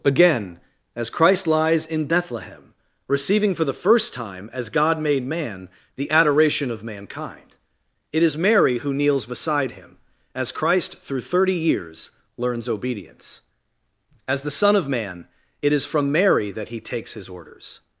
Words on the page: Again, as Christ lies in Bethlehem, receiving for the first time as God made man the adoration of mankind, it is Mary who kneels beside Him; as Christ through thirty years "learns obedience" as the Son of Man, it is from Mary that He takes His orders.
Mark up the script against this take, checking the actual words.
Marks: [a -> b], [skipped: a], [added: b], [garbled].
Again, as Christ lies in Bethlehem, receiving for the first time as God made man the adoration of mankind, it is Mary who kneels beside Him; as Christ through thirty years "learns obedience" as the Son of Man, it is from Mary that He takes His orders.